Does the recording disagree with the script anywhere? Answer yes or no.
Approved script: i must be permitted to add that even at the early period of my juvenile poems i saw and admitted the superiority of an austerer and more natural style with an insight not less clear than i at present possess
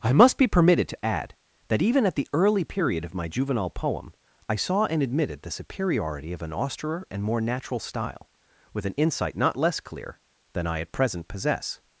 yes